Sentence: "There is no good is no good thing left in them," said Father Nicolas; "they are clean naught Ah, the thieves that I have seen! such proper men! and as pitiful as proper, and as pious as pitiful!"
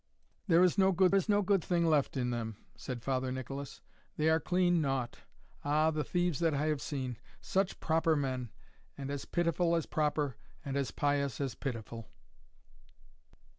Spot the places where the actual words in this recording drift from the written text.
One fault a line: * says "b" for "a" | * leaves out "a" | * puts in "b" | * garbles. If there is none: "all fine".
all fine